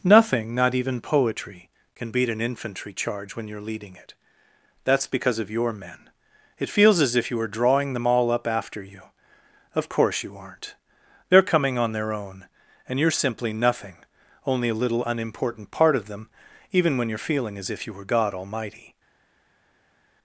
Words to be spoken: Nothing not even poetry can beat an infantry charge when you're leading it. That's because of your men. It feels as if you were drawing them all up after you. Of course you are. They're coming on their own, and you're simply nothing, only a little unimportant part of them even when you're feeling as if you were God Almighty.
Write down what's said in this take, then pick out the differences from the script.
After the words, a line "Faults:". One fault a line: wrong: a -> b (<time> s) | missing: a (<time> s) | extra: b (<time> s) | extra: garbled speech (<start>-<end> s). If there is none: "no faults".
Nothing not even poetry can beat an infantry charge when you're leading it. That's because of your men. It feels as if you were drawing them all up after you. Of course you aren't. They're coming on their own, and you're simply nothing, only a little unimportant part of them even when you're feeling as if you were God Almighty.
Faults:
wrong: are -> aren't (10.3 s)